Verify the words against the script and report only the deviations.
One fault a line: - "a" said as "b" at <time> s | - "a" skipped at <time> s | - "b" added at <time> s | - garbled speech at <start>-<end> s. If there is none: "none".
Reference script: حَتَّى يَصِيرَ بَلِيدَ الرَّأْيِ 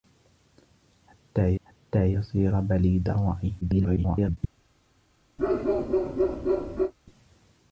- "حَتَّى" added at 1.6 s
- garbled speech at 3.6-4.4 s